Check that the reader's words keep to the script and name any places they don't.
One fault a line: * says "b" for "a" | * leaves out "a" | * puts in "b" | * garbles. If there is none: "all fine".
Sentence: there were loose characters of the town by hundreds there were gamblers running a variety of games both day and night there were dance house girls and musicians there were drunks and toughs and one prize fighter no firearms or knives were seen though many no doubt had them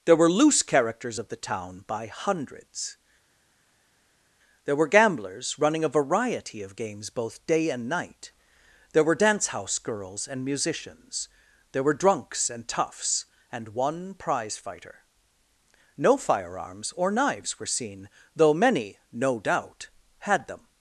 all fine